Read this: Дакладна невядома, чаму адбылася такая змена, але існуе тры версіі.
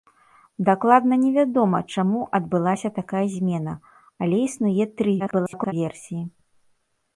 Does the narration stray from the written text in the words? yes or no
yes